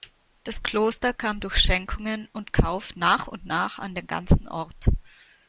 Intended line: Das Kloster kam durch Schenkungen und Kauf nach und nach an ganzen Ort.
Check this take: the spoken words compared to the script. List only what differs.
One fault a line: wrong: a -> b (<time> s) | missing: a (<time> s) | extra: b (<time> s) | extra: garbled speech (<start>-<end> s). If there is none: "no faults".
extra: den (3.9 s)